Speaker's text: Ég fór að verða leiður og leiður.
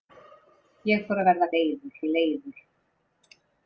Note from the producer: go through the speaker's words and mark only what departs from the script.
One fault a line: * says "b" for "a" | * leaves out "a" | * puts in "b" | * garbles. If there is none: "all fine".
all fine